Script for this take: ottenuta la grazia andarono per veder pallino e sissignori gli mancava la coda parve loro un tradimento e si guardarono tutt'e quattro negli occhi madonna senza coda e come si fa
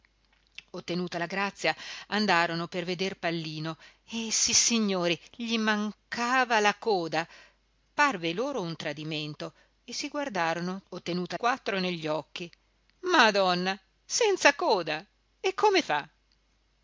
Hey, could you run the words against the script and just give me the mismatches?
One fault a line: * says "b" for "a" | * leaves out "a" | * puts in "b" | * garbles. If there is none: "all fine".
* says "ottenuta" for "tutt'e"
* leaves out "si"